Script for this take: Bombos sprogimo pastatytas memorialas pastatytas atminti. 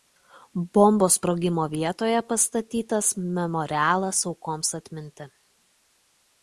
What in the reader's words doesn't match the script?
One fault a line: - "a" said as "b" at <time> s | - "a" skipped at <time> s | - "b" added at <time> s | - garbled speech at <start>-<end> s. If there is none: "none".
- "vietoje" added at 1.7 s
- "pastatytas" said as "aukoms" at 4.3 s